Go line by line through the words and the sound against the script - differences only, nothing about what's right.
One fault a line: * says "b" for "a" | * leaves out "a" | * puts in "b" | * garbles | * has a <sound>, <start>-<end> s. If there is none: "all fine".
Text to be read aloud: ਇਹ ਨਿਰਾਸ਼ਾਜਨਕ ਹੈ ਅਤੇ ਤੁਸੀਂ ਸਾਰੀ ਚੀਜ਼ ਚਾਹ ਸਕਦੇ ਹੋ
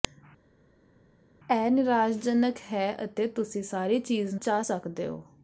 all fine